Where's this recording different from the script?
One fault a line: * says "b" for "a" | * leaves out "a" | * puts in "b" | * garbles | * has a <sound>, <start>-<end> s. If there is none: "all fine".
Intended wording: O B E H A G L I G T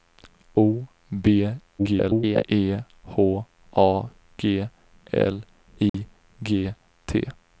* garbles
* has a dropout, 5.9-5.9 s